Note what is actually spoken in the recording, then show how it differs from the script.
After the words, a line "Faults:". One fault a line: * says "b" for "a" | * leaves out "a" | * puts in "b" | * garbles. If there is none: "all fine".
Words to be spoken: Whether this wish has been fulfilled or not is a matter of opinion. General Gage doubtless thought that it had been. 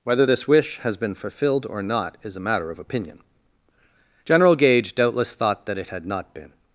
Whether this wish has been fulfilled or not is a matter of opinion. General Gage doubtless thought that it had not been.
Faults:
* puts in "not"